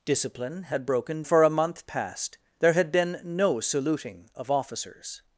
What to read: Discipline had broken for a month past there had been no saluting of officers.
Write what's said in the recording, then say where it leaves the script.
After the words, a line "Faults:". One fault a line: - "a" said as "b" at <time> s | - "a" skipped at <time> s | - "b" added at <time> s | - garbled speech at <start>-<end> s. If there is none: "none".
Discipline had broken for a month past there had been no saluting of officers.
Faults:
none